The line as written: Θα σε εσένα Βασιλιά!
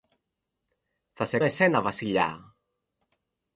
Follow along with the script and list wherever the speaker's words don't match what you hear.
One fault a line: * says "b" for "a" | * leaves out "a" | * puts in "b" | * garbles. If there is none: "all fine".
all fine